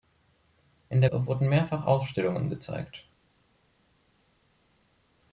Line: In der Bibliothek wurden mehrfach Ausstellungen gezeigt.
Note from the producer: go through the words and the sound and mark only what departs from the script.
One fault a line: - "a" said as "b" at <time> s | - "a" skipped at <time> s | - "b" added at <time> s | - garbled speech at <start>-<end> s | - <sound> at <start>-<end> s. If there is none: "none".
- "Bibliothek" skipped at 1.1 s